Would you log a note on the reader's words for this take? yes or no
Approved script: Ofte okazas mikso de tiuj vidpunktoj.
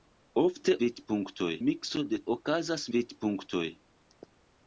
yes